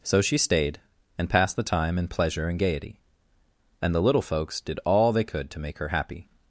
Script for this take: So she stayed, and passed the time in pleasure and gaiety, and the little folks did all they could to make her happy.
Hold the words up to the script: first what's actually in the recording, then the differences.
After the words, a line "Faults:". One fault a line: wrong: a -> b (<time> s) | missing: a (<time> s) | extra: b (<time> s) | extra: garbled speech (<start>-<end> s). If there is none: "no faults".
So she stayed, and passed the time in pleasure and gaiety, and the little folks did all they could to make her happy.
Faults:
no faults